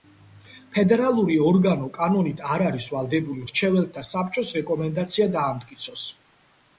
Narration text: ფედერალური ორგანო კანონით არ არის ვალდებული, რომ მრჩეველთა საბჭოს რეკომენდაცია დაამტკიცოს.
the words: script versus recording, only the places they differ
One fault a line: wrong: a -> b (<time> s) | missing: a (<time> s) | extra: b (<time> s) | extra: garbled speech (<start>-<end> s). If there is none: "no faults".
missing: რომ (3.5 s)